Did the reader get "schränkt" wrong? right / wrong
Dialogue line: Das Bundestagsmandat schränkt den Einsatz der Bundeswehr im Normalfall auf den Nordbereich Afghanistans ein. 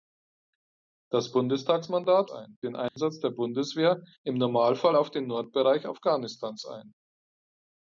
wrong